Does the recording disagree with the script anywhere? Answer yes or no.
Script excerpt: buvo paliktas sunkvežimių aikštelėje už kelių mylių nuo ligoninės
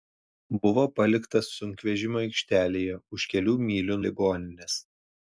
yes